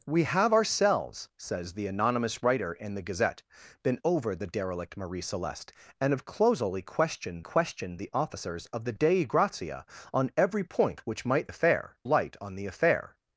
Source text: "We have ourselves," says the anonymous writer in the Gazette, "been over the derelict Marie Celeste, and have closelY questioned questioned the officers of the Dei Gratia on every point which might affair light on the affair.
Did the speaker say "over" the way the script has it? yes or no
yes